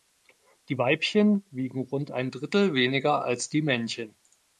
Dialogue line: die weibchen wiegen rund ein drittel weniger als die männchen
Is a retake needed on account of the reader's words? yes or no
no